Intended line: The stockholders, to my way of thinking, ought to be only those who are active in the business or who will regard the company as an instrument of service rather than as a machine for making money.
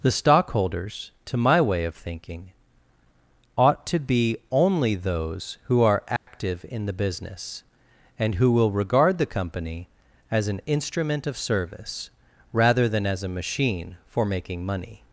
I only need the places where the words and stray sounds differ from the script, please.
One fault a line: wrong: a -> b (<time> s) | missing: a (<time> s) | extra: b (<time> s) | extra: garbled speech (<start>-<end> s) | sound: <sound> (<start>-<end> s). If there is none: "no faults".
sound: dropout (6.2-6.3 s)
wrong: or -> and (8.2 s)